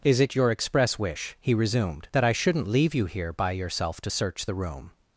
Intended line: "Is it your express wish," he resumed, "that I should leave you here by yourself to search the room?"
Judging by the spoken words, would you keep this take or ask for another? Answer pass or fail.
fail